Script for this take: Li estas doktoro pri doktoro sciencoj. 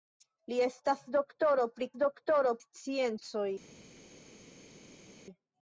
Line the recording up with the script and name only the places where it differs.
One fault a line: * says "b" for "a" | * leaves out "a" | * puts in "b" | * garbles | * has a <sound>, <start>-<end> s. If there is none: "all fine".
all fine